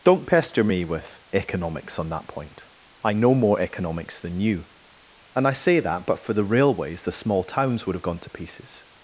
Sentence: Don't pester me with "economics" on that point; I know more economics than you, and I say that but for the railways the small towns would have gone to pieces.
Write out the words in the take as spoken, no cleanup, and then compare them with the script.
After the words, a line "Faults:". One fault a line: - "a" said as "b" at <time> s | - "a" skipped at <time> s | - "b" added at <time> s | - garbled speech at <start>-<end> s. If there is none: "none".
Don't pester me with "economics" on that point; I know more economics than you, and I say that but for the railways the small towns would have gone to pieces.
Faults:
none